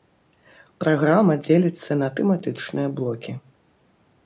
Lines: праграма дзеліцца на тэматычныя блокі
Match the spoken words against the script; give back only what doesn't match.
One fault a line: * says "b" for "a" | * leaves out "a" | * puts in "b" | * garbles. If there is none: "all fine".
all fine